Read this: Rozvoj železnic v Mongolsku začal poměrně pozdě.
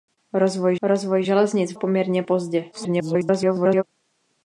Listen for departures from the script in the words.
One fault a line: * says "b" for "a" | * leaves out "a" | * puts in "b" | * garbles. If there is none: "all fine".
* puts in "rozvoj"
* leaves out "Mongolsku začal"
* garbles